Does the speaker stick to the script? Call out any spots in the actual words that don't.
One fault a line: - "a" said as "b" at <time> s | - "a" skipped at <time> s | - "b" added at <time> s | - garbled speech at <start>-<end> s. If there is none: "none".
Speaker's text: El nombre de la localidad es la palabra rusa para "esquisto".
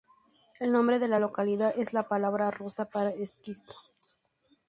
none